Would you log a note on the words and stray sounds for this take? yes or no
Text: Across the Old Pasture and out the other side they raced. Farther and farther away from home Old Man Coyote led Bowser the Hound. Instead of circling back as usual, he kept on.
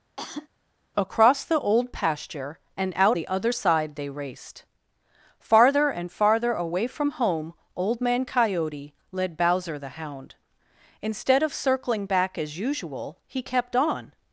yes